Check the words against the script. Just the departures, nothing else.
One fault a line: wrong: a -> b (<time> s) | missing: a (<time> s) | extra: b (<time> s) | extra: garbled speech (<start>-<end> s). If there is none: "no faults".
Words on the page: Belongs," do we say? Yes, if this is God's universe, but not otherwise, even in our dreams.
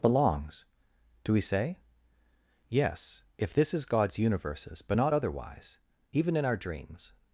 wrong: universe -> universes (4.2 s)